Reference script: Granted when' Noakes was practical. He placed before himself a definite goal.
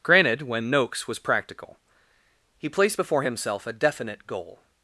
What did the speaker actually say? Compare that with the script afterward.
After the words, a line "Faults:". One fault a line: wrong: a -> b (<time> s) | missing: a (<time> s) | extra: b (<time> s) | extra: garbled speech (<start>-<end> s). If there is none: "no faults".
Granted when' Noakes was practical. He placed before himself a definite goal.
Faults:
no faults